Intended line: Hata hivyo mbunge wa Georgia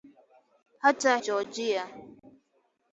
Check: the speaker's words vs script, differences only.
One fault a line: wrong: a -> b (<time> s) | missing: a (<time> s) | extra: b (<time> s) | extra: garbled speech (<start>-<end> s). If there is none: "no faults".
missing: hivyo mbunge wa (1.2 s)